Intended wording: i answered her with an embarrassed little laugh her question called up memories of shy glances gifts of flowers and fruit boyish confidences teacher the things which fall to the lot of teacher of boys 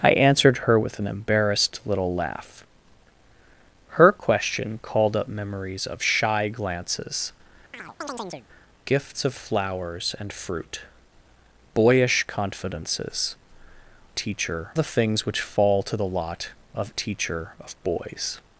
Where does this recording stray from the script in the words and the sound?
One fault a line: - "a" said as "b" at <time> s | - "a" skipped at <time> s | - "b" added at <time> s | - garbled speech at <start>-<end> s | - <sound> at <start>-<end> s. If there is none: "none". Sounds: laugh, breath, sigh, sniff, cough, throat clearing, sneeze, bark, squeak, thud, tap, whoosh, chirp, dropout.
- chirp at 7.7-8.5 s